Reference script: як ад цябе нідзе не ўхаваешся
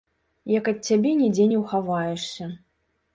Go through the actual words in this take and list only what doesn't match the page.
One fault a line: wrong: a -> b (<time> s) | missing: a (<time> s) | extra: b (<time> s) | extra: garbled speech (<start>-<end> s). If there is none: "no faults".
no faults